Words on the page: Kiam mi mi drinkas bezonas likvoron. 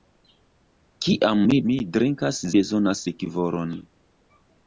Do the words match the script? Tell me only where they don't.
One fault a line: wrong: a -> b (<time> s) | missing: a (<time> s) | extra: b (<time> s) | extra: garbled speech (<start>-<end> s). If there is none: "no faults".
no faults